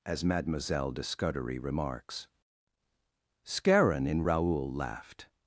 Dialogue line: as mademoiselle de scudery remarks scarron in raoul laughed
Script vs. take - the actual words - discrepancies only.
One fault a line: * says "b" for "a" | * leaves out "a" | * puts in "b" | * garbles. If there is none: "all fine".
all fine